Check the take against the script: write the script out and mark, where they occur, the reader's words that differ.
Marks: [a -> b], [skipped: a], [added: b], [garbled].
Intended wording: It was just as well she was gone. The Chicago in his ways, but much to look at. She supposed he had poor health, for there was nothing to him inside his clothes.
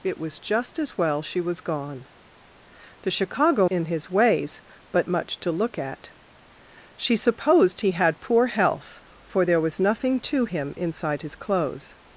It was just as well she was gone. The Chicago in his ways, but much to look at. She supposed he had poor health, for there was nothing to him inside his clothes.